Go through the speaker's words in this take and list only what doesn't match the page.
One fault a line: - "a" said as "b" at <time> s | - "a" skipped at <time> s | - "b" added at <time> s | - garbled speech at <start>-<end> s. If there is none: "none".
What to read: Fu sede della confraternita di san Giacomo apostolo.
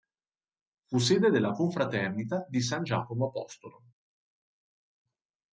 none